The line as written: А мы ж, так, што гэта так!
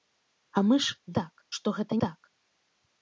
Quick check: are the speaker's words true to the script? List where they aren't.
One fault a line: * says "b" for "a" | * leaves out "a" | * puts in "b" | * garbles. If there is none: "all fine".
all fine